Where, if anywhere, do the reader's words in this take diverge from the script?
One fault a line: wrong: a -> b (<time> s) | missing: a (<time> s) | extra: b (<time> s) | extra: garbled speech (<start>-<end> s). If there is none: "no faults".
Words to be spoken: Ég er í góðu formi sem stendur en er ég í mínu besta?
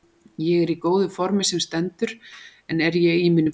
no faults